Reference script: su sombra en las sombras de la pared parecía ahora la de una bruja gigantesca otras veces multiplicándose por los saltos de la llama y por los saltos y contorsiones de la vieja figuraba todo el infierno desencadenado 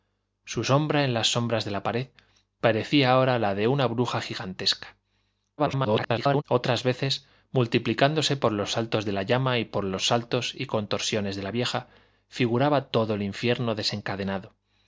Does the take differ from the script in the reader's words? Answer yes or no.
yes